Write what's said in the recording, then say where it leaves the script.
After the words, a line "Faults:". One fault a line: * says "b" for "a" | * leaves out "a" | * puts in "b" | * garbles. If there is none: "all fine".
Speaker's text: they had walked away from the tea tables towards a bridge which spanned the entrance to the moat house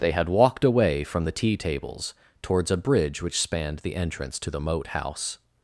they had walked away from the tea tables towards a bridge which spanned the entrance to the moat house
Faults:
all fine